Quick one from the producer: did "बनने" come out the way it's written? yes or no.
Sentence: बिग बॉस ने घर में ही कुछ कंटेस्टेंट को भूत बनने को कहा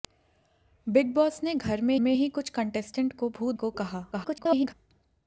no